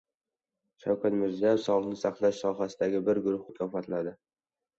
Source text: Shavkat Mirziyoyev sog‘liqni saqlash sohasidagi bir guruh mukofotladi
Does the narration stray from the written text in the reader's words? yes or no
no